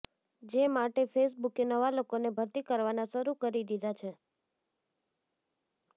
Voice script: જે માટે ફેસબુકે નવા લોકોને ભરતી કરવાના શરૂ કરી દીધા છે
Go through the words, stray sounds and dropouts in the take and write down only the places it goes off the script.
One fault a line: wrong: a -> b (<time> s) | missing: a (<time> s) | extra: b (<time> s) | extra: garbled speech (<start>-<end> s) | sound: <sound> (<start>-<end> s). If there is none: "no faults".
no faults